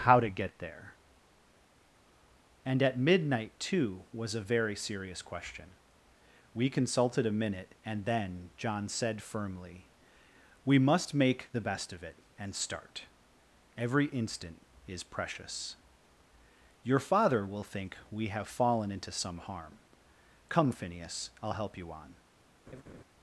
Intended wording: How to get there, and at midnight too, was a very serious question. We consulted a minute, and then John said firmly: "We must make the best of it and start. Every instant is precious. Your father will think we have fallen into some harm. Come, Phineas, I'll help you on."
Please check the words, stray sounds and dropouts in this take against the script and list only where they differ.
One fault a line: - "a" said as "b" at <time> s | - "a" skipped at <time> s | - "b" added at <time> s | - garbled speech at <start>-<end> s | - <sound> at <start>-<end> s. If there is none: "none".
- laugh at 22.7-23.0 s